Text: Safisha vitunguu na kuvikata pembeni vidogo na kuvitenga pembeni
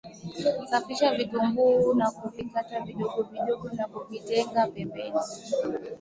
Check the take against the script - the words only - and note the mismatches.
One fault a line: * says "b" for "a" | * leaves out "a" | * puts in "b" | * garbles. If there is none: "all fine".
* says "vidogo" for "pembeni"